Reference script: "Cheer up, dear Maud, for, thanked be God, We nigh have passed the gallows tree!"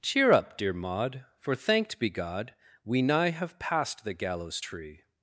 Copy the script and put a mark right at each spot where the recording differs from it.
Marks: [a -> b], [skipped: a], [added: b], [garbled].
"Cheer up, dear Maud, for, thanked be God, We nigh have passed the gallows tree!"